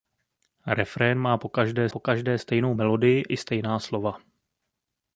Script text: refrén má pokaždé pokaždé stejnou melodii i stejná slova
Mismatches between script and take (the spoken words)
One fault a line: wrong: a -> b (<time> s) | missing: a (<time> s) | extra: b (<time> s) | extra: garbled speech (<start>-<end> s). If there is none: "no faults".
no faults